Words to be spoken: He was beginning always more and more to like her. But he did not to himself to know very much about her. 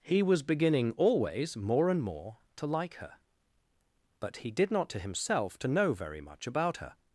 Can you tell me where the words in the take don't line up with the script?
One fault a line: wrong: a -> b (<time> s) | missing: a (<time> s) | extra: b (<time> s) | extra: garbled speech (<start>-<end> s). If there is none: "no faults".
no faults